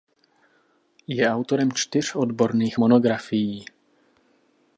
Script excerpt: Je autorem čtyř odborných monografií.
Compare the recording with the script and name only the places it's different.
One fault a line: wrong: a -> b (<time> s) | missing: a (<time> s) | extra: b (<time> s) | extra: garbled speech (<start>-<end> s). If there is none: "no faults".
no faults